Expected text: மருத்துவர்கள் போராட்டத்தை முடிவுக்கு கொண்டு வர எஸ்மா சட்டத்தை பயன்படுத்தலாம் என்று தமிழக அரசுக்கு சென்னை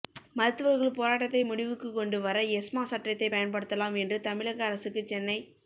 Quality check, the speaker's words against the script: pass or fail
pass